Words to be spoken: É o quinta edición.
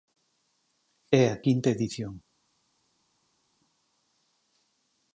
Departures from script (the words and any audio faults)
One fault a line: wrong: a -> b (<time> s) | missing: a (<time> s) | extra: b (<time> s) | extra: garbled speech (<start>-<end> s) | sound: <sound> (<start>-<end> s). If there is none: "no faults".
wrong: o -> a (1.3 s)